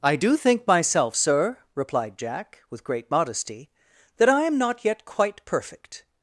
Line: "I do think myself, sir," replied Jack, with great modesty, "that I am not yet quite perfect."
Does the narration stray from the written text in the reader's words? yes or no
no